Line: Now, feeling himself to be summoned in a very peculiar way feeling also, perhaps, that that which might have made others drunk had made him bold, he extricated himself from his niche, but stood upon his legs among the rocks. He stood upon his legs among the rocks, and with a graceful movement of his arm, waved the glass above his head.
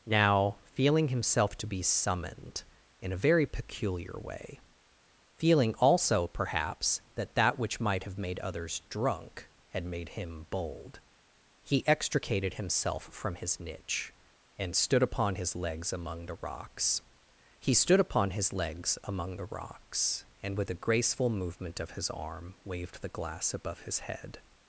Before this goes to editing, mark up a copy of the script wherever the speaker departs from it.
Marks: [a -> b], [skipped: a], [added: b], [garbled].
Now, feeling himself to be summoned in a very peculiar way feeling also, perhaps, that that which might have made others drunk had made him bold, he extricated himself from his niche, [but -> and] stood upon his legs among the rocks. He stood upon his legs among the rocks, and with a graceful movement of his arm, waved the glass above his head.